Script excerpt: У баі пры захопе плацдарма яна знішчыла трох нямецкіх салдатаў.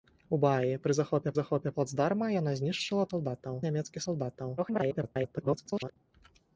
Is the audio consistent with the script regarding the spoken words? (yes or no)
no